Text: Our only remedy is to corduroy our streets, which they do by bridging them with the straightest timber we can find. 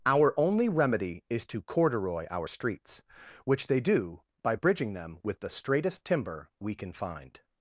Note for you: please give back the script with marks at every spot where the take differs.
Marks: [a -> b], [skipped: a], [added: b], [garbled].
Our only remedy is to corduroy our streets, which they do by bridging them with the straightest timber we can find.